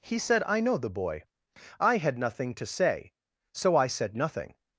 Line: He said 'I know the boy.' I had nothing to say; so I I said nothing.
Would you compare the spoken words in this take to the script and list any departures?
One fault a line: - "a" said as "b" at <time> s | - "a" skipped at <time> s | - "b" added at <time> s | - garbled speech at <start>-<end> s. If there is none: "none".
- "I" skipped at 3.9 s